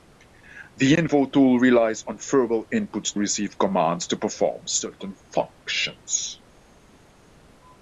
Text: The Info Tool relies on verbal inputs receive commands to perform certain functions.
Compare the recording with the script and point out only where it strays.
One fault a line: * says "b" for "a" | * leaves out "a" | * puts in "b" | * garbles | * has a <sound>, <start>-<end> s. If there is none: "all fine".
all fine